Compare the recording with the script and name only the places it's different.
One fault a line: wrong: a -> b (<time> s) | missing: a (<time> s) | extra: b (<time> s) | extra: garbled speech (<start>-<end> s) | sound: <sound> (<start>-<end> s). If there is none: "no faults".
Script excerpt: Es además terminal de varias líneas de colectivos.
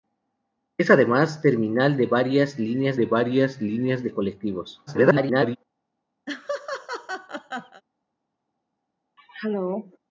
extra: varias líneas de (3.1 s)
extra: garbled speech (4.9-5.6 s)
sound: laugh (6.3-7.8 s)
sound: throat clearing (9.2-10.0 s)